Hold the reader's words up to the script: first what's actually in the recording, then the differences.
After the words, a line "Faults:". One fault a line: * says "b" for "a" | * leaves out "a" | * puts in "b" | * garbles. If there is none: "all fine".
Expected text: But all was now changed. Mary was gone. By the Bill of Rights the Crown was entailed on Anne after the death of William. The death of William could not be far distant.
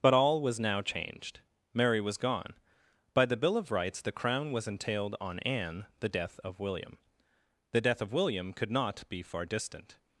But all was now changed. Mary was gone. By the Bill of Rights the Crown was entailed on Anne the death of William. The death of William could not be far distant.
Faults:
* leaves out "after"